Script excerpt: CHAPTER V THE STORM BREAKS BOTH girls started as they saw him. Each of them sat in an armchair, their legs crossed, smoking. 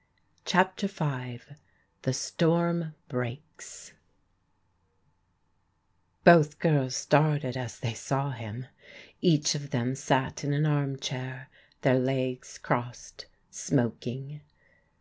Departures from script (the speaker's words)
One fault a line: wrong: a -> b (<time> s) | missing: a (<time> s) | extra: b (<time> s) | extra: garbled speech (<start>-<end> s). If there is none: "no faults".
no faults